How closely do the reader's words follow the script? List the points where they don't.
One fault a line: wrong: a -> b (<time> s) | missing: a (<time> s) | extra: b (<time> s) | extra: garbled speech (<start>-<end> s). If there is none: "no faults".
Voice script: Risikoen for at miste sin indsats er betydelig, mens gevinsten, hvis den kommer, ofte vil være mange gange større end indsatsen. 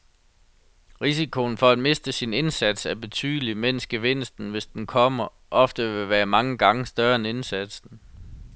no faults